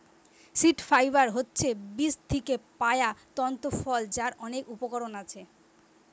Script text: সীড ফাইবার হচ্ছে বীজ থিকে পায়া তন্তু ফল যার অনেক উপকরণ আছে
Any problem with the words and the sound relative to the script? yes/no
no